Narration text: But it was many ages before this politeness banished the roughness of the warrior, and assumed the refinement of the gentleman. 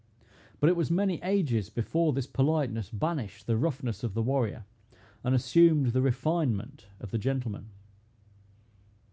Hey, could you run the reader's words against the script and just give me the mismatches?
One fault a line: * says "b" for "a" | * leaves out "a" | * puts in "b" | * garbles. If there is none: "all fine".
all fine